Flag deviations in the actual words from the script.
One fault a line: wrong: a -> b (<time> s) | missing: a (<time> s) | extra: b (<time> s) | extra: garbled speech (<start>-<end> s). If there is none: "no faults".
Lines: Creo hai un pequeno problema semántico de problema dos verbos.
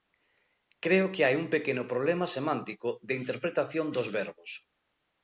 extra: que (1.1 s)
wrong: problema -> interpretación (3.2 s)